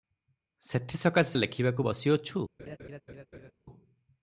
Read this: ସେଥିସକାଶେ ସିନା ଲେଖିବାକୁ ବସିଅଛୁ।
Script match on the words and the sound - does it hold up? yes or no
no